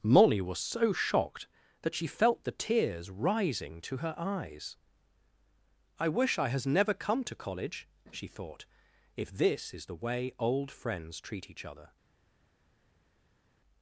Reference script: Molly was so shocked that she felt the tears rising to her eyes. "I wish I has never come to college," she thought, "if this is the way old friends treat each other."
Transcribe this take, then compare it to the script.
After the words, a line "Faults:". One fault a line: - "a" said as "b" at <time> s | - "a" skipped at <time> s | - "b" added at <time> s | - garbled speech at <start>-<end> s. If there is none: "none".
Molly was so shocked that she felt the tears rising to her eyes. "I wish I has never come to college," she thought, "if this is the way old friends treat each other."
Faults:
none